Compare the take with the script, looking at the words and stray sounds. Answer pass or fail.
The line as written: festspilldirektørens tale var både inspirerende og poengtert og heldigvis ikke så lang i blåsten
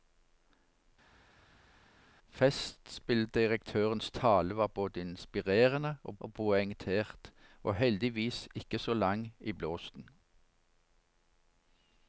fail